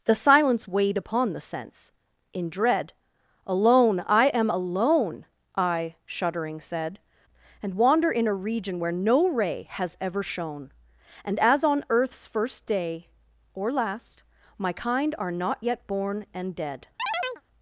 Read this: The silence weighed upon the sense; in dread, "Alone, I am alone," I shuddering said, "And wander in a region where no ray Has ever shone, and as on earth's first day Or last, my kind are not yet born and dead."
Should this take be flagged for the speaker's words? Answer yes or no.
no